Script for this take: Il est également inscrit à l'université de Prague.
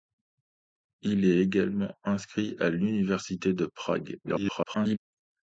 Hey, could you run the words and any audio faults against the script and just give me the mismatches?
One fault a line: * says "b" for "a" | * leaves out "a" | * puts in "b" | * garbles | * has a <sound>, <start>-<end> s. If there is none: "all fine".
* garbles